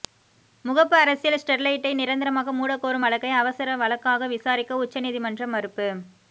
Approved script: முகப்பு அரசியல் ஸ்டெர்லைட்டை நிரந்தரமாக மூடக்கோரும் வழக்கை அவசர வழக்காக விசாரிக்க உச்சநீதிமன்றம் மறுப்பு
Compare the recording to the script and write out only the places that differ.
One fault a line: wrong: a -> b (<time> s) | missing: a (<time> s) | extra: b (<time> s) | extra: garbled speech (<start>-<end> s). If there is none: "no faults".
no faults